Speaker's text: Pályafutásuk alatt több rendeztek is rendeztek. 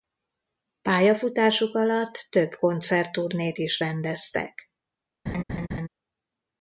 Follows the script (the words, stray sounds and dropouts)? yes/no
no